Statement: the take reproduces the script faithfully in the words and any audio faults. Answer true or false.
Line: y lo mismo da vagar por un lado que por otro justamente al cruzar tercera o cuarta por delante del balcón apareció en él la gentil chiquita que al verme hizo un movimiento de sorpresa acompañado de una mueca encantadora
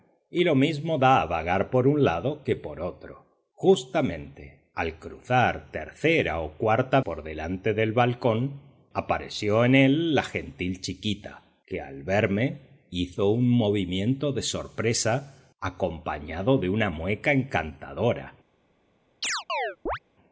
false